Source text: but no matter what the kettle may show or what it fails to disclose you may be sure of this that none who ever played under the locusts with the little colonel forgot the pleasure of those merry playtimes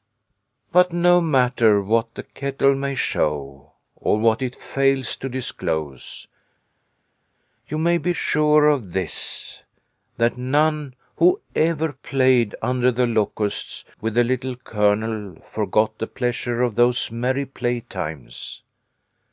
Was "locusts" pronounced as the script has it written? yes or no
yes